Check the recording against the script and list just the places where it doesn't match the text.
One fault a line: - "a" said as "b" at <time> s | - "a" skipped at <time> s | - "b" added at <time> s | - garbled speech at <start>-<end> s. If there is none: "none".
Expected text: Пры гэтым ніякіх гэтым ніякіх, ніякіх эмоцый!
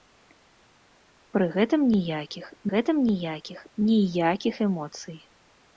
none